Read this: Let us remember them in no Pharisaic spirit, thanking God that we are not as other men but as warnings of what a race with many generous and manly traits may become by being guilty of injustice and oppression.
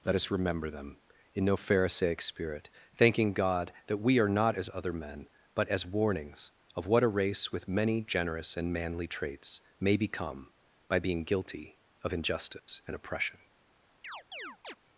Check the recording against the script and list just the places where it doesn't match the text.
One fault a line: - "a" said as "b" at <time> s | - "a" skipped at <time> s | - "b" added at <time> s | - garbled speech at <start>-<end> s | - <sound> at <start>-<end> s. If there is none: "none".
- dropout at 12.6-12.7 s
- chirp at 14.0-14.8 s